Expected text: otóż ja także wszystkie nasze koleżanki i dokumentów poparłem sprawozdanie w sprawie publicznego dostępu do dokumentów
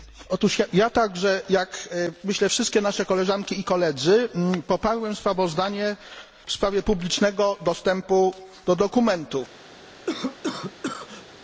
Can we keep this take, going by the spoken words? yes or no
no